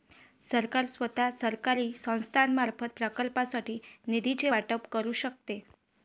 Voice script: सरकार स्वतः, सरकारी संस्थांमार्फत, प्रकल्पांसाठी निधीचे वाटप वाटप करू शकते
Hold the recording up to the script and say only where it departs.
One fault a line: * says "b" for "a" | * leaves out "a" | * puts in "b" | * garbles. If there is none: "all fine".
* leaves out "वाटप"